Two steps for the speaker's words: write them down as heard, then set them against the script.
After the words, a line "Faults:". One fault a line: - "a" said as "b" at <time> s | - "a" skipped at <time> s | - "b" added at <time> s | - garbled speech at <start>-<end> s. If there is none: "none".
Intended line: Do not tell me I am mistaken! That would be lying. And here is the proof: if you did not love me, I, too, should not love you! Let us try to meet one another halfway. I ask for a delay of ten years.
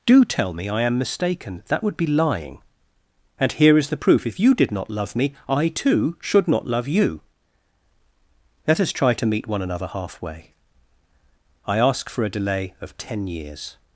Do tell me I am mistaken! That would be lying. And here is the proof: if you did not love me, I, too, should not love you! Let us try to meet one another halfway. I ask for a delay of ten years.
Faults:
- "not" skipped at 0.2 s